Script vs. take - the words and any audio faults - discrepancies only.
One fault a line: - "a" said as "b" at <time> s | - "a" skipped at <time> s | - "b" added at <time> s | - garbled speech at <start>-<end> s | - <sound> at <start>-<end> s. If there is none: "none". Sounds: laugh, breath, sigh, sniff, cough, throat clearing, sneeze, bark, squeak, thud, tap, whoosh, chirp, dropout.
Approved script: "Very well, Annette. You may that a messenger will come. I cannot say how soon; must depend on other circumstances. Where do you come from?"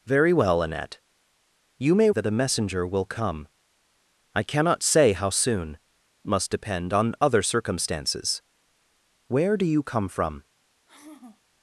- sigh at 10.9-11.4 s